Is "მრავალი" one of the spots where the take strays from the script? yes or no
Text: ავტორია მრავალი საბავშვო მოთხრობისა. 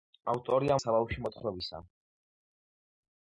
yes